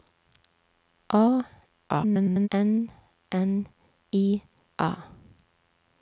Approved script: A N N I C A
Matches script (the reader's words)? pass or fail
fail